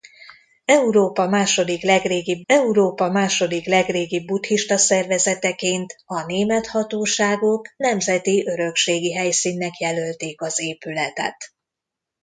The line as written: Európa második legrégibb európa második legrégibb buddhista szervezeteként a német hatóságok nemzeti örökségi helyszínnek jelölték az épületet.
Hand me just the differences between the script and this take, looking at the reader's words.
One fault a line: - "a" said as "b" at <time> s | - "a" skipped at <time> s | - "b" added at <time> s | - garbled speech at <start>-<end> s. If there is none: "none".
none